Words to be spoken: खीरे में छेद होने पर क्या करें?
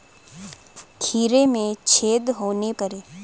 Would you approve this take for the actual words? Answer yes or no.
no